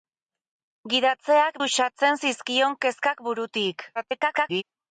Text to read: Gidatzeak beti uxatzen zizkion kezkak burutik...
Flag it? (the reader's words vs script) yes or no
yes